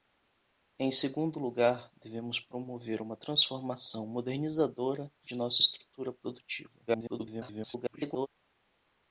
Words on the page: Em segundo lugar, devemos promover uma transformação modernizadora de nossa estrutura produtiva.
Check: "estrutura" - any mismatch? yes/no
no